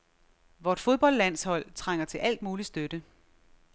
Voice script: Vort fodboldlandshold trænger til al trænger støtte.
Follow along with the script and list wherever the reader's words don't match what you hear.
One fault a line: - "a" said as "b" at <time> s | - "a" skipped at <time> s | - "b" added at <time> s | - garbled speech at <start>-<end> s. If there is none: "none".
- "trænger" said as "mulig" at 2.4 s